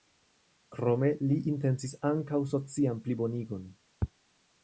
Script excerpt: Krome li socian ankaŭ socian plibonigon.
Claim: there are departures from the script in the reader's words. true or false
true